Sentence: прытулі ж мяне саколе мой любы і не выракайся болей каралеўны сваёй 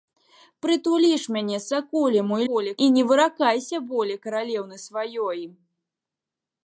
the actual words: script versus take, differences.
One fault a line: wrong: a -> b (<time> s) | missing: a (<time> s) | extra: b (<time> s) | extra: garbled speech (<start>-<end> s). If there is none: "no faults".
wrong: любы -> болей (2.5 s)